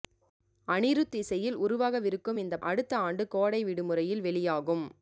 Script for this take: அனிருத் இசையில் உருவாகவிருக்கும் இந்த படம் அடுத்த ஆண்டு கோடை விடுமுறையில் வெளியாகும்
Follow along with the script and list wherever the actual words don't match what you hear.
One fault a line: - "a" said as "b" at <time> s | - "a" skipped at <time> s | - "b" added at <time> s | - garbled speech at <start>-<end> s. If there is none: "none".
- "படம்" skipped at 2.6 s